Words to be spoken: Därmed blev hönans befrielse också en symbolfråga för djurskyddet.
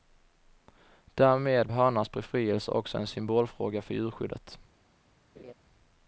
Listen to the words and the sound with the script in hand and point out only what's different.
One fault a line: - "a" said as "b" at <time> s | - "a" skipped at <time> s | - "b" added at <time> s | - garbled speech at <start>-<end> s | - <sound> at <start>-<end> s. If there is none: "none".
- "blev" skipped at 1.7 s
- laugh at 5.4-5.5 s